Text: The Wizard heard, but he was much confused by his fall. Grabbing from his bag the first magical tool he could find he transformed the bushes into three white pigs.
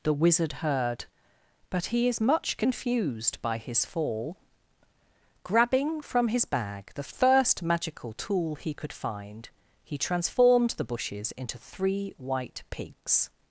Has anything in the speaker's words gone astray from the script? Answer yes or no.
yes